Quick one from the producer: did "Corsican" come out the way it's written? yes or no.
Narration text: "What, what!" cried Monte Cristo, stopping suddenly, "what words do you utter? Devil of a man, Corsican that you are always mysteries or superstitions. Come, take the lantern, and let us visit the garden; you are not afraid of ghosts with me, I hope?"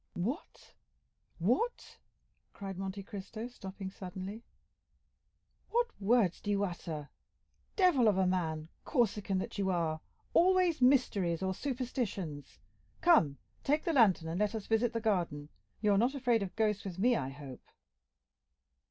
yes